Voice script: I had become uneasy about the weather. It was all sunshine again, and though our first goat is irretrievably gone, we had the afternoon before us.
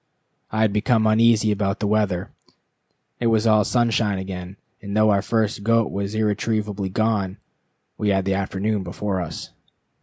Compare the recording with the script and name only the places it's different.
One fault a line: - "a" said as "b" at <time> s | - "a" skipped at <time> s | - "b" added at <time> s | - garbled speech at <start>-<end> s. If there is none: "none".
- "is" said as "was" at 5.9 s